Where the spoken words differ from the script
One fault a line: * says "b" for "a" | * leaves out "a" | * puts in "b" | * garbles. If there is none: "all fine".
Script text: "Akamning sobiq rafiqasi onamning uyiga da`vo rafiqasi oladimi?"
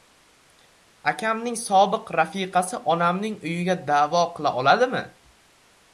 * says "qila" for "rafiqasi"